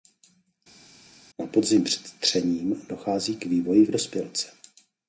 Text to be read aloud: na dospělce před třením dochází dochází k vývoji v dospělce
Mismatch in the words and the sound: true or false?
true